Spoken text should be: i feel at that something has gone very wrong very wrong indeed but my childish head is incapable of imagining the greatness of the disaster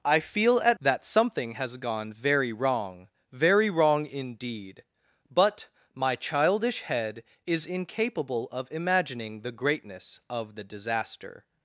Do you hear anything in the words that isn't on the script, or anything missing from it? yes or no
no